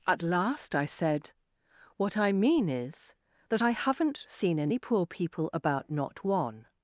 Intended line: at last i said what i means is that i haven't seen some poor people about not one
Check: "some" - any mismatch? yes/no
yes